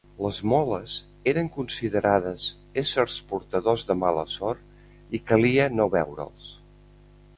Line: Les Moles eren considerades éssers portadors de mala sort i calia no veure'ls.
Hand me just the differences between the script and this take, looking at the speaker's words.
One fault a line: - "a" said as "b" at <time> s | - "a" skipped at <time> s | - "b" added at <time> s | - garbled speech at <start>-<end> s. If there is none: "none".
none